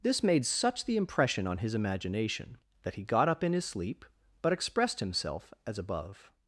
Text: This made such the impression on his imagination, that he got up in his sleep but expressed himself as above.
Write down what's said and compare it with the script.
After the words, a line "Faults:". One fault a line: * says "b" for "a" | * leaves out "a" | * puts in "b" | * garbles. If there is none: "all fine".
This made such the impression on his imagination, that he got up in his sleep but expressed himself as above.
Faults:
all fine